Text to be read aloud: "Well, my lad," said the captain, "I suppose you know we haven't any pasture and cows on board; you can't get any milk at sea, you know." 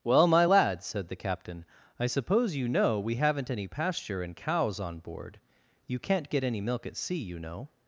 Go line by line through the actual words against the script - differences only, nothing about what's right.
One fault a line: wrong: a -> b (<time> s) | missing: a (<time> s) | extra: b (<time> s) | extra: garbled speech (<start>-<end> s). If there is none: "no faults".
no faults